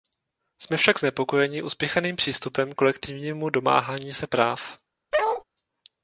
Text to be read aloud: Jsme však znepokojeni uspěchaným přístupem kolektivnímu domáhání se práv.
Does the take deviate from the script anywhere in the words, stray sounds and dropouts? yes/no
yes